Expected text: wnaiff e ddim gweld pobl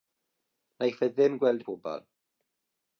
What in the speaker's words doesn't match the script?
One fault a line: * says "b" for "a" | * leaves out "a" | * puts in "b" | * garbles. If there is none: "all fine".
all fine